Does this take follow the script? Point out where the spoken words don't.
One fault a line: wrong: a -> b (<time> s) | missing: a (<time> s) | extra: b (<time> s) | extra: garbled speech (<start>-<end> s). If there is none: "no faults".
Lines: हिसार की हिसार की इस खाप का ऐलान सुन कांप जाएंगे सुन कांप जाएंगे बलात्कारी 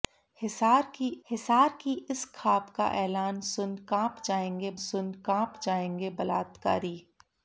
no faults